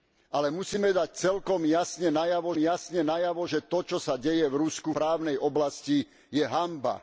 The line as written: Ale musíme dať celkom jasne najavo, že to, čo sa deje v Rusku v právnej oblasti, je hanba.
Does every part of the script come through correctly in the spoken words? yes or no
no